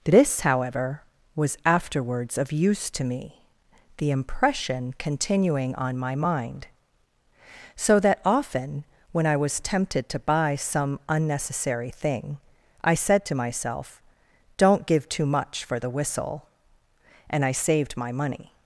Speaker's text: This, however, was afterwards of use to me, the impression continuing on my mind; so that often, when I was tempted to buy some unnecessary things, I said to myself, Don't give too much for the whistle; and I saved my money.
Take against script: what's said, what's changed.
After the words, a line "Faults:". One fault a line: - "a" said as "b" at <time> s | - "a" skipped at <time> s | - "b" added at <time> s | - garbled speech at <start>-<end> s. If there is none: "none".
This, however, was afterwards of use to me, the impression continuing on my mind; so that often, when I was tempted to buy some unnecessary thing, I said to myself, Don't give too much for the whistle; and I saved my money.
Faults:
- "things" said as "thing" at 11.9 s